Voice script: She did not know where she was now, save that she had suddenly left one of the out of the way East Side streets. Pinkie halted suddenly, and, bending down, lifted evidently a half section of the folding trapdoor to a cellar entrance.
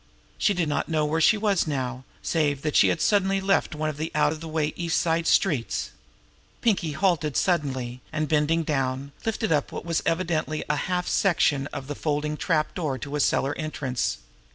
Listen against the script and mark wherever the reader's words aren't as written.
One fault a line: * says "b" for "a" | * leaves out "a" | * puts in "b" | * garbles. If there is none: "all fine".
* puts in "up what was"